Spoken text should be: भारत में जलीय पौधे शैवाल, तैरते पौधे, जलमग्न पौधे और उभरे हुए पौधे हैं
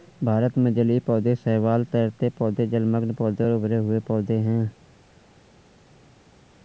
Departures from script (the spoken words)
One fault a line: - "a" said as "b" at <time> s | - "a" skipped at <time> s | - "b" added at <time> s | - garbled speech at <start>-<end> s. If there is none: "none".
none